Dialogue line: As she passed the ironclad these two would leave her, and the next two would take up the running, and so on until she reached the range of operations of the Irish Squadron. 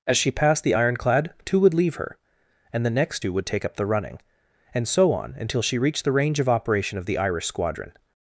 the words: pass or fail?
fail